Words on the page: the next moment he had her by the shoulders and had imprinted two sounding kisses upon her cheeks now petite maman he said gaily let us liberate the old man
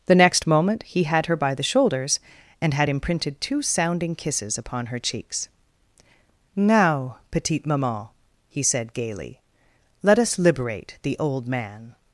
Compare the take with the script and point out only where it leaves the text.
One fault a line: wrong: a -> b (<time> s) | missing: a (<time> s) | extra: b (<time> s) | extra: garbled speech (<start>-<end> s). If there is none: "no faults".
no faults